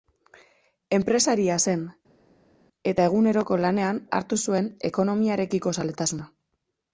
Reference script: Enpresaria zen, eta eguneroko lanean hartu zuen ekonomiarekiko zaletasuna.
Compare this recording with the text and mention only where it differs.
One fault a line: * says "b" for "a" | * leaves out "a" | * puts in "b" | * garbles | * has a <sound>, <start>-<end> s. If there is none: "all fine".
all fine